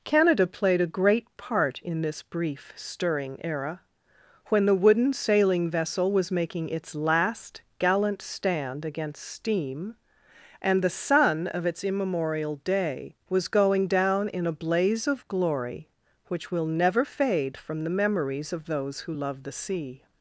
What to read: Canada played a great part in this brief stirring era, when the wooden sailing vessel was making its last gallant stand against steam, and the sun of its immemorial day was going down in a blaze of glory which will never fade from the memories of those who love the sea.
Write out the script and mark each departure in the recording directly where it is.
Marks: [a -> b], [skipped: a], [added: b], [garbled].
Canada played a great part in this brief stirring era, when the wooden sailing vessel was making its last gallant stand against steam, and the sun of its immemorial day was going down in a blaze of glory which will never fade from the memories of those who love the sea.